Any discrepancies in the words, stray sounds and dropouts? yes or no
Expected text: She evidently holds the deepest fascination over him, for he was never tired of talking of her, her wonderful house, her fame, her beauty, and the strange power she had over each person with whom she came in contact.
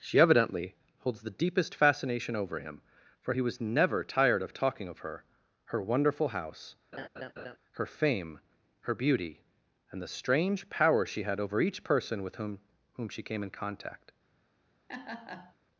yes